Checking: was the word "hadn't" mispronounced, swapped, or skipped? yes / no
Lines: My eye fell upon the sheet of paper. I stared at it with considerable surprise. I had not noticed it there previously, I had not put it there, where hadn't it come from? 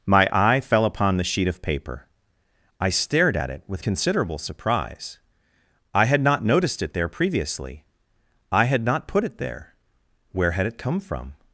yes